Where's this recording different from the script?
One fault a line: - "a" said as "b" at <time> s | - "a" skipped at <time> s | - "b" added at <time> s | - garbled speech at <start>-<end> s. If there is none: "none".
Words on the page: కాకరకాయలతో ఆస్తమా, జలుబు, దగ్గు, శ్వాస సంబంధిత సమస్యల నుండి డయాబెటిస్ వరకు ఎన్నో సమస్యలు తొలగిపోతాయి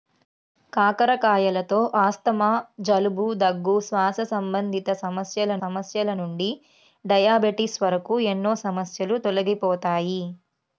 - "సమస్యల" added at 5.6 s